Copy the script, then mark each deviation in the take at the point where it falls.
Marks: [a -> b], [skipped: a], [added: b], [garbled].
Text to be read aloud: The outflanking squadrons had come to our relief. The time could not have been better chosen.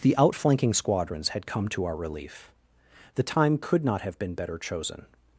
The outflanking squadrons had come to our relief. The time could not have been better chosen.